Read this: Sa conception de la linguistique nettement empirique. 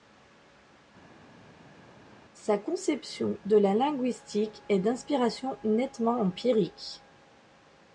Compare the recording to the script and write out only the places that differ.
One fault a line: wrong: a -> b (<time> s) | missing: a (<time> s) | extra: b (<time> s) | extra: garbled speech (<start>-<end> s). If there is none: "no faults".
extra: est d'inspiration (4.7 s)